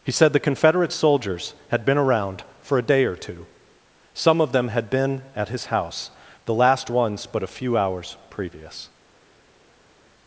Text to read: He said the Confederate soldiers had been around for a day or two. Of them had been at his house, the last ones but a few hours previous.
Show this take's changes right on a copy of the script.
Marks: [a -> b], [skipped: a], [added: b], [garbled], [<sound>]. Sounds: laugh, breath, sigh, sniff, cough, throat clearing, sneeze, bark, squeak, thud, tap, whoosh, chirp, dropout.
He said the Confederate soldiers had been around for a day or two. [added: Some] Of them had been at his house, the last ones but a few hours previous.